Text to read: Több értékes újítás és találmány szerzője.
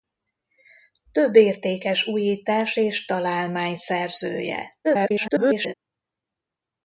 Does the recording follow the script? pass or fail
fail